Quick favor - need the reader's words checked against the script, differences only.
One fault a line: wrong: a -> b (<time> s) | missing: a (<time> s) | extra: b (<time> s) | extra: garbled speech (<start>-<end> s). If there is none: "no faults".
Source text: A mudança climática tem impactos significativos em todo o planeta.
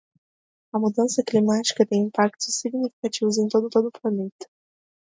extra: todo (3.7 s)